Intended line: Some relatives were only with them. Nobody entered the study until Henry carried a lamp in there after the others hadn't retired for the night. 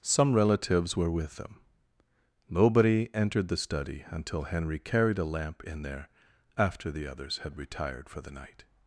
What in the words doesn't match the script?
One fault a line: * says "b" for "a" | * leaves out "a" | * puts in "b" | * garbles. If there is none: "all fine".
* leaves out "only"
* says "had" for "hadn't"